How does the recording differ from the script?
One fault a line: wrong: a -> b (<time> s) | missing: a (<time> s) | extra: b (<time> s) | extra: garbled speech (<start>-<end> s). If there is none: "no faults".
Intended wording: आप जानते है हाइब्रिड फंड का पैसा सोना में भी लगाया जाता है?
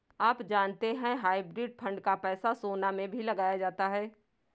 no faults